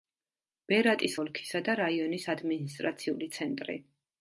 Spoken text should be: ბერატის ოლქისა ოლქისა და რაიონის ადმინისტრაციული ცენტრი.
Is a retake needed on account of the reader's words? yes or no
yes